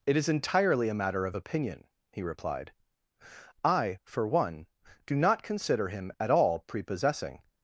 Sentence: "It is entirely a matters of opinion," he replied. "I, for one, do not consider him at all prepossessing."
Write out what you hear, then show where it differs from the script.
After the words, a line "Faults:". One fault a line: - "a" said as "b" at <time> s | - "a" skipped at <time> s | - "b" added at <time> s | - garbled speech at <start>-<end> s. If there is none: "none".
"It is entirely a matter of opinion," he replied. "I, for one, do not consider him at all prepossessing."
Faults:
- "matters" said as "matter" at 1.0 s